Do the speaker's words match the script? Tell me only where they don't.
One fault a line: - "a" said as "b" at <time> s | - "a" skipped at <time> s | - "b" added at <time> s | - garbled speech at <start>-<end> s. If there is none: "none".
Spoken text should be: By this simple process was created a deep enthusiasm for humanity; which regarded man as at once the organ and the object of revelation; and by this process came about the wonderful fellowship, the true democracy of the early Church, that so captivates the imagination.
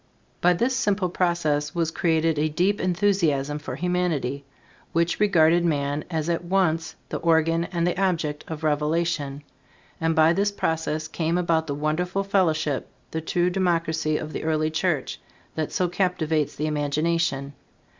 none